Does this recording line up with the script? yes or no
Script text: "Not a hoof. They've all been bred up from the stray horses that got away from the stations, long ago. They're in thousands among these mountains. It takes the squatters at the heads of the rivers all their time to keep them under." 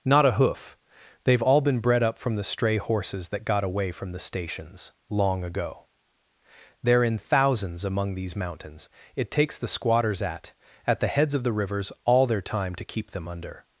no